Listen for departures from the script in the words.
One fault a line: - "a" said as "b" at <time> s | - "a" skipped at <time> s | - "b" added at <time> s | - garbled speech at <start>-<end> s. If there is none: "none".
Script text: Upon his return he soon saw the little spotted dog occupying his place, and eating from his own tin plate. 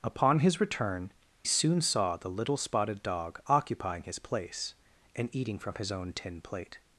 - "he" skipped at 1.1 s